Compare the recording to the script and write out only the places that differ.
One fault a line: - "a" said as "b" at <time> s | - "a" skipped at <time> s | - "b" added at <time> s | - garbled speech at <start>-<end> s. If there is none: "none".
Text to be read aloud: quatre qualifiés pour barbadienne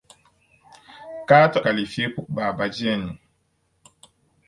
none